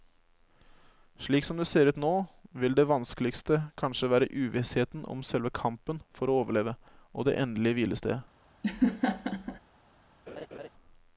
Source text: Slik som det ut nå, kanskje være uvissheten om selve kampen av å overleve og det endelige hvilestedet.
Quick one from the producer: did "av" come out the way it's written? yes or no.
no